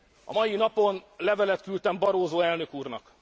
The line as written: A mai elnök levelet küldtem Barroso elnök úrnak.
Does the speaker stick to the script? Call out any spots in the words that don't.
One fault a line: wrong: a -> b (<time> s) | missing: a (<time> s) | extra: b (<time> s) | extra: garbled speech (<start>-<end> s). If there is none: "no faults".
wrong: elnök -> napon (0.5 s)